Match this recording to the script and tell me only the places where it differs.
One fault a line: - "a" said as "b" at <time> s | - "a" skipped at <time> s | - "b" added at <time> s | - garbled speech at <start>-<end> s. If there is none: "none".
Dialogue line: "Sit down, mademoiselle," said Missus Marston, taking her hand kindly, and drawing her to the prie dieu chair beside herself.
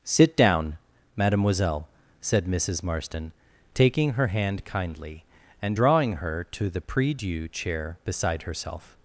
none